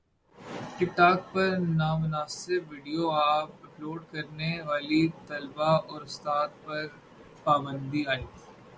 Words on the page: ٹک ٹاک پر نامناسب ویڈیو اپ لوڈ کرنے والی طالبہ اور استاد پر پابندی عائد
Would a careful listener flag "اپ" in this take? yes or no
no